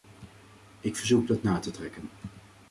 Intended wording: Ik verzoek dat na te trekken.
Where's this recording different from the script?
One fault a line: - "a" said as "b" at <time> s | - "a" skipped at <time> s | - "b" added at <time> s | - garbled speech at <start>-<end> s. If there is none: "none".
none